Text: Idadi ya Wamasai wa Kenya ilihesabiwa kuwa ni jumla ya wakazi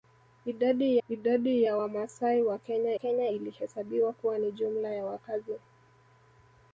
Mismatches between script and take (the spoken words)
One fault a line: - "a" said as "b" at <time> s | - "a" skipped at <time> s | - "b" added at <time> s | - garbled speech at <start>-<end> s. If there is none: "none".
- "idadi" added at 1.1 s
- "Kenya" added at 2.9 s